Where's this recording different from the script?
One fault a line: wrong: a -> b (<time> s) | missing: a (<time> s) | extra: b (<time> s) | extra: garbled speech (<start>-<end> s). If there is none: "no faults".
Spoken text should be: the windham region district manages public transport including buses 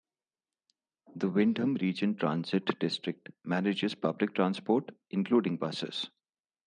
extra: transit (2.2 s)